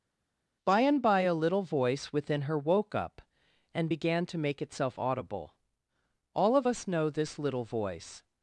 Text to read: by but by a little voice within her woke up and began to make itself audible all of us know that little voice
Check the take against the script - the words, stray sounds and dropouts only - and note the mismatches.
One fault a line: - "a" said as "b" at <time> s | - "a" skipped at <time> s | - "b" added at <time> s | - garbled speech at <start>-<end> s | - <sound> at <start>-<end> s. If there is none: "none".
- "but" said as "and" at 0.8 s
- "that" said as "this" at 7.1 s